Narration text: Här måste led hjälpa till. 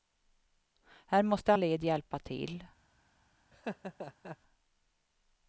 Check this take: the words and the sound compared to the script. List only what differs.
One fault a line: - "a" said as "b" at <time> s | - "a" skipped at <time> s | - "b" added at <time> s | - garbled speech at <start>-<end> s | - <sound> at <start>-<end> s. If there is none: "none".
- laugh at 3.5-4.4 s